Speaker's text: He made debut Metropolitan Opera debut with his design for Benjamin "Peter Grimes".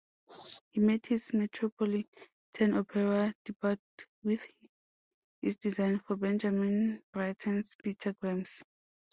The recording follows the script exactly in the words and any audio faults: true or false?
false